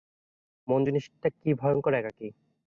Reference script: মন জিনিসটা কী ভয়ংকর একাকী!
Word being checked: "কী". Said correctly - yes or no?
yes